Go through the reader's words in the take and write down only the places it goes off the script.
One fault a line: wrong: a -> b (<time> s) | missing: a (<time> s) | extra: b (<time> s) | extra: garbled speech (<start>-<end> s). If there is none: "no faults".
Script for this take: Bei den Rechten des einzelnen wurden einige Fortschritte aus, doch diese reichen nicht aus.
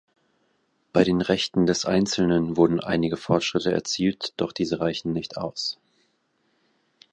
wrong: aus -> erzielt (3.7 s)